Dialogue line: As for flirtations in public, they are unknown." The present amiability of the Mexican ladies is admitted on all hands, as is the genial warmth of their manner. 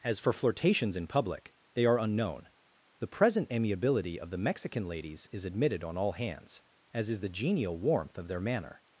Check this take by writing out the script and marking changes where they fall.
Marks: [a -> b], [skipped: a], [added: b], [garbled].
As for flirtations in public, they are unknown." The present amiability of the Mexican ladies is admitted on all hands, as is the genial warmth of their manner.